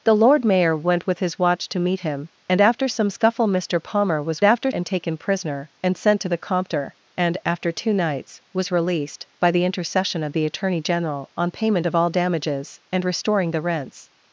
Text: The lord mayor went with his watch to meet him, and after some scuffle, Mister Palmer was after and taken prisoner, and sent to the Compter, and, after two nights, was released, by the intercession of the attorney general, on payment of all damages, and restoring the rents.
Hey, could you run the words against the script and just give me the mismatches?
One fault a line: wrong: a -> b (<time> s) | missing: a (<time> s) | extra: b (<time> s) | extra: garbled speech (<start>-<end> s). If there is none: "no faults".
no faults